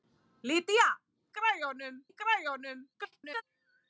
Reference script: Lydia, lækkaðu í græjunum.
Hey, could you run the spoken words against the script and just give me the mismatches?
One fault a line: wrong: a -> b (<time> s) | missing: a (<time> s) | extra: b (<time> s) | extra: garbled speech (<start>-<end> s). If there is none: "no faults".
wrong: lækkaðu -> græjunum (1.4 s)
extra: garbled speech (2.9-3.4 s)